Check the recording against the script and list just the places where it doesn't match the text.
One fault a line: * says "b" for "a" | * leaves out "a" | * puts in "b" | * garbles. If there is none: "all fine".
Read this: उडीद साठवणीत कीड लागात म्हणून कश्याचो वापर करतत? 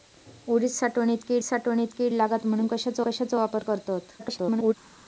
* puts in "साठवणीत कीड"
* puts in "कश्याचो"
* garbles